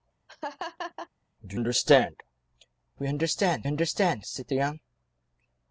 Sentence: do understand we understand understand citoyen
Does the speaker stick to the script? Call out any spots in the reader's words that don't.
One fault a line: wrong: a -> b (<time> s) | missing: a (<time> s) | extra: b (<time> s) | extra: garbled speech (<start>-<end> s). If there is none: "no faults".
no faults